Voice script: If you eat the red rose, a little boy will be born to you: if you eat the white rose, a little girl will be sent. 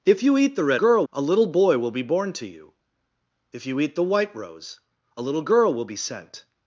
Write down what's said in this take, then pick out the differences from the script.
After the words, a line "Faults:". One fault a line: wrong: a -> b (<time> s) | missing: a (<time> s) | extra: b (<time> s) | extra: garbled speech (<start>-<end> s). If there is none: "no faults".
If you eat the red girl, a little boy will be born to you: if you eat the white rose, a little girl will be sent.
Faults:
wrong: rose -> girl (0.7 s)